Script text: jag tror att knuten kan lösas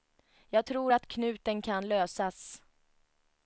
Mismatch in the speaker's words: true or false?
false